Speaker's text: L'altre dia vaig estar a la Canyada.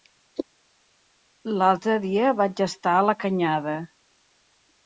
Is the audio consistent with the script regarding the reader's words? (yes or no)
yes